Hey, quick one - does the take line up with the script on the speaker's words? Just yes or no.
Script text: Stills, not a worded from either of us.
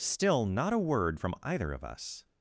no